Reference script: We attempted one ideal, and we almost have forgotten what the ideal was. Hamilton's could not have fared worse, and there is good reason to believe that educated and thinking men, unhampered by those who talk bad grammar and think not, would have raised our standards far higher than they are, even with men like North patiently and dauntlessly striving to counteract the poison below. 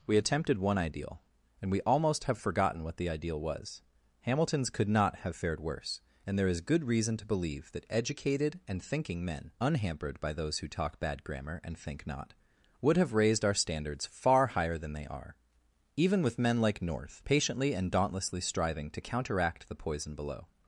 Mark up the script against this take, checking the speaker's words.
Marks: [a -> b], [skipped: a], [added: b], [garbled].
We attempted one ideal, and we almost have forgotten what the ideal was. Hamilton's could not have fared worse, and there is good reason to believe that educated and thinking men, unhampered by those who talk bad grammar and think not, would have raised our standards far higher than they are, even with men like North patiently and dauntlessly striving to counteract the poison below.